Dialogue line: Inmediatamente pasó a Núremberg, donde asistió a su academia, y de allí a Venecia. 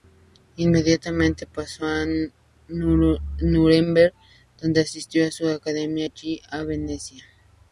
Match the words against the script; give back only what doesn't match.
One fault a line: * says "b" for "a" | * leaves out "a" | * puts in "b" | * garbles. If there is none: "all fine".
* leaves out "y de"